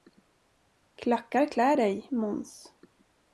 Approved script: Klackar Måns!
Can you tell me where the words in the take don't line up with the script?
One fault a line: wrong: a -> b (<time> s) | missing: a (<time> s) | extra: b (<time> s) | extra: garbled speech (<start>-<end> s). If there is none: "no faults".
extra: klär dig (1.5 s)